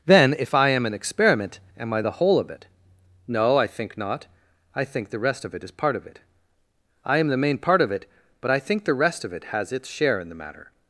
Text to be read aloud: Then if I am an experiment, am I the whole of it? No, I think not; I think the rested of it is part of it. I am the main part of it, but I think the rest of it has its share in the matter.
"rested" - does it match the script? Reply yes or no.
no